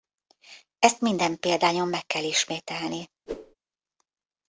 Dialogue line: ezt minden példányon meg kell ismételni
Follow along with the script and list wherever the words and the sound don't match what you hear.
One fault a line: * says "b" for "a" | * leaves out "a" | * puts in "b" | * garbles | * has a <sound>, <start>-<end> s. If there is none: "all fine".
* has a whoosh, 3.3-3.6 s